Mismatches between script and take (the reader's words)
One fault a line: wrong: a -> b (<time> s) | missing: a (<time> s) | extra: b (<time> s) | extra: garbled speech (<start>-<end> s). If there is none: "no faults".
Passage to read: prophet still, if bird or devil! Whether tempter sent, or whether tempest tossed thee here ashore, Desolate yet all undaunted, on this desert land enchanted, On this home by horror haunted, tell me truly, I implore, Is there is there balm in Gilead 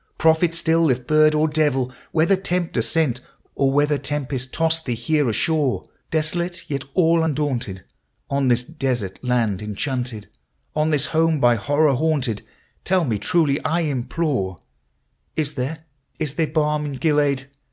no faults